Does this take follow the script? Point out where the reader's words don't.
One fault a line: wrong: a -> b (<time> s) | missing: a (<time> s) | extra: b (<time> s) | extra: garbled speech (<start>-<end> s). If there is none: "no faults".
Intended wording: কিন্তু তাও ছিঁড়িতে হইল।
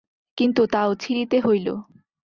no faults